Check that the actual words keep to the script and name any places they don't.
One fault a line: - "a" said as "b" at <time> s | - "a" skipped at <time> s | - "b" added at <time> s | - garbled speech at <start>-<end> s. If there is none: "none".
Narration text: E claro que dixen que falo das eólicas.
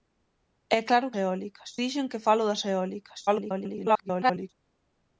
- "que" said as "eólicas" at 1.2 s
- garbled speech at 3.3-4.5 s